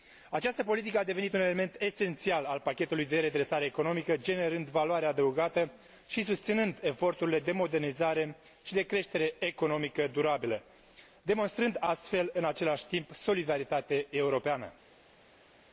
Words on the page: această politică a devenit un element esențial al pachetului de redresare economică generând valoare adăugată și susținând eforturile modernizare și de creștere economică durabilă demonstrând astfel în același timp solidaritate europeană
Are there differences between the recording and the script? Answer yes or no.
yes